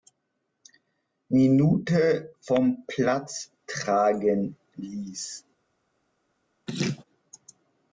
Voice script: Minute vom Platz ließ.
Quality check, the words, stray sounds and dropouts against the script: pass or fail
fail